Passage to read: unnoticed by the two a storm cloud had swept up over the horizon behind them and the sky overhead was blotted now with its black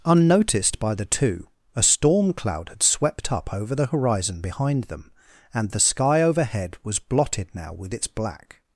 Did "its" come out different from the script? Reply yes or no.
no